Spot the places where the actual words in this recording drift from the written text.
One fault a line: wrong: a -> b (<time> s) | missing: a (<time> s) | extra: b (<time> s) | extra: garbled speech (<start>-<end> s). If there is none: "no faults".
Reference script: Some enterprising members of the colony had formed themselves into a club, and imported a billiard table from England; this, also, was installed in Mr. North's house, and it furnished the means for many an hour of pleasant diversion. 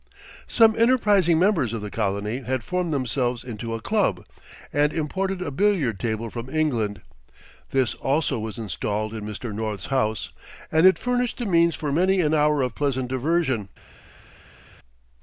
no faults